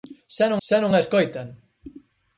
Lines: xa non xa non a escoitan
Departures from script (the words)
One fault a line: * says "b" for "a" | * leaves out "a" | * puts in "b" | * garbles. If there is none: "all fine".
all fine